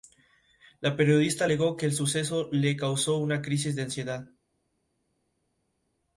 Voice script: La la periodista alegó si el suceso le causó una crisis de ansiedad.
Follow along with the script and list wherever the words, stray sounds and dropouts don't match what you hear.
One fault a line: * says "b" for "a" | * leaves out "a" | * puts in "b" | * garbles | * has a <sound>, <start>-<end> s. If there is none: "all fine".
* leaves out "la"
* says "que" for "si"